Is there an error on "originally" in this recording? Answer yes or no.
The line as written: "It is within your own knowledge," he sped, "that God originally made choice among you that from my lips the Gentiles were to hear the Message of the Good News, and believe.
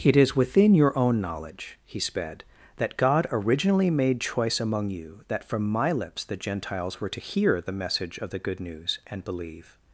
no